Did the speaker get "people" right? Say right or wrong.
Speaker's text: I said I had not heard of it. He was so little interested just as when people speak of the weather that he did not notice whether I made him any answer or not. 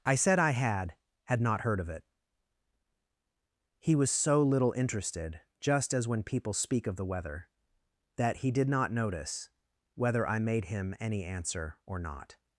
right